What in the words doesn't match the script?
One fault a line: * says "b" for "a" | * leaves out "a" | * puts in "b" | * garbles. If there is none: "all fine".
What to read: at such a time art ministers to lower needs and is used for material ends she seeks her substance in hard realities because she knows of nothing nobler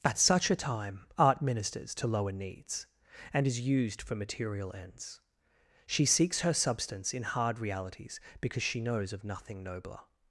all fine